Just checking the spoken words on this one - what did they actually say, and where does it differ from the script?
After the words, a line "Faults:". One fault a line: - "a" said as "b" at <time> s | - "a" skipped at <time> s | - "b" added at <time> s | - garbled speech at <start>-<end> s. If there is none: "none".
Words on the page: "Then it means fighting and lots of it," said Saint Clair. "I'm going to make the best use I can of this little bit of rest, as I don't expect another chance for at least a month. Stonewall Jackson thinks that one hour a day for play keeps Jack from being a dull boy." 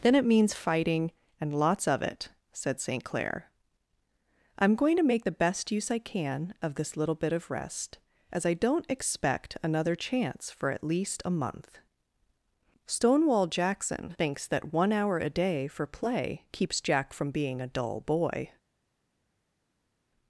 "Then it means fighting and lots of it," said Saint Clair. "I'm going to make the best use I can of this little bit of rest, as I don't expect another chance for at least a month. Stonewall Jackson thinks that one hour a day for play keeps Jack from being a dull boy."
Faults:
none